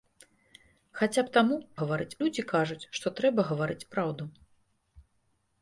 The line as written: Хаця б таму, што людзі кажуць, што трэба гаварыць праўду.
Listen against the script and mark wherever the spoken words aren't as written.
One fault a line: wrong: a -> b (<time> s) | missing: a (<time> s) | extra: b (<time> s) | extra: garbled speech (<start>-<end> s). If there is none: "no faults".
wrong: што -> гаварыць (1.8 s)